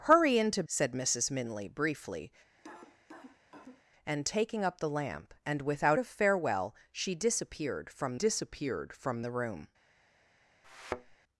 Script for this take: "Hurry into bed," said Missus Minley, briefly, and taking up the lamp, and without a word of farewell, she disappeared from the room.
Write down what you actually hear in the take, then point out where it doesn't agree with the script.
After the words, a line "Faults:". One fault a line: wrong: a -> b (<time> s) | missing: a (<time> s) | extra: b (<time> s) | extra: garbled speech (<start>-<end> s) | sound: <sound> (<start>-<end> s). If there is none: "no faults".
"Hurry into," said Missus Minley, briefly, and taking up the lamp, and without of farewell, she disappeared from disappeared from the room.
Faults:
missing: bed (0.6 s)
sound: cough (2.6-3.8 s)
missing: a word (6.0 s)
extra: disappeared from (8.1 s)
sound: thud (10.6-11.2 s)